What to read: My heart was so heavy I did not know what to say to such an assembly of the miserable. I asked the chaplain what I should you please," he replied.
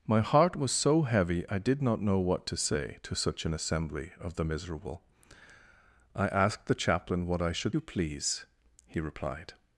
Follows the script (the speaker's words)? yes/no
yes